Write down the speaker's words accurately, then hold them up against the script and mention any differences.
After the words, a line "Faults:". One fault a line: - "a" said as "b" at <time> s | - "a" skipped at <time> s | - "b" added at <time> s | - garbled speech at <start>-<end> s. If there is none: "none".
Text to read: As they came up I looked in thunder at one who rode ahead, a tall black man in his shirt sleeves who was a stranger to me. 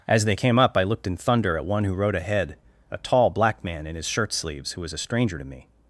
As they came up I looked in thunder at one who rode ahead, a tall black man in his shirt sleeves who was a stranger to me.
Faults:
none